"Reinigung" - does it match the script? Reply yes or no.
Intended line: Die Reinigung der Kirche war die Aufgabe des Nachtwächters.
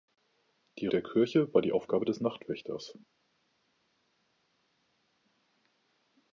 no